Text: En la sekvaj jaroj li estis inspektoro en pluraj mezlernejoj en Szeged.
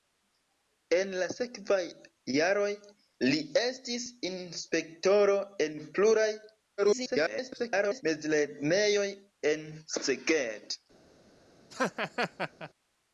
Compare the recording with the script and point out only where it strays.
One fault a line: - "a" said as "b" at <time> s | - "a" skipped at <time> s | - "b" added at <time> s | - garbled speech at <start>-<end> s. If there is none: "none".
- garbled speech at 6.8-8.0 s